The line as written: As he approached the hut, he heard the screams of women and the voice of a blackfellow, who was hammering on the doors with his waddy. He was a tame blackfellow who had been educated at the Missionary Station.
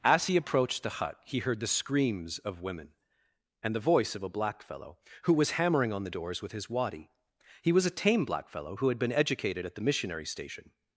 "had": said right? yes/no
yes